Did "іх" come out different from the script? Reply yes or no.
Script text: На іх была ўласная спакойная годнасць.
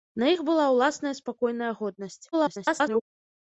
no